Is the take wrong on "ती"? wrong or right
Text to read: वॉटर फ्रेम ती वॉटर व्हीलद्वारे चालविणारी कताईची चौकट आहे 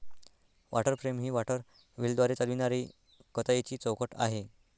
wrong